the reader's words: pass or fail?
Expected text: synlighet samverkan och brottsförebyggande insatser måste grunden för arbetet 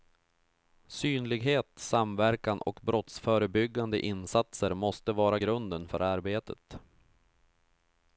fail